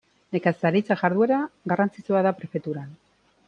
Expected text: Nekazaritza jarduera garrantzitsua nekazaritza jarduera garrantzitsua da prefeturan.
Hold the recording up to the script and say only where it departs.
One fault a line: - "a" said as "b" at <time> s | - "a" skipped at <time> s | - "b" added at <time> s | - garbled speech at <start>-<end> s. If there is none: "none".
- "nekazaritza jarduera garrantzitsua" skipped at 2.2 s